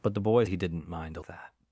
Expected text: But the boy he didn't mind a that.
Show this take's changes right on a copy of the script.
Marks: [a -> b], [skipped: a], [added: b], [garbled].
But the boy he didn't mind a that.